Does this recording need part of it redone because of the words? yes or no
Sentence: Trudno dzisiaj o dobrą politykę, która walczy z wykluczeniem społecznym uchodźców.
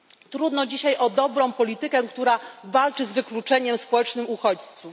no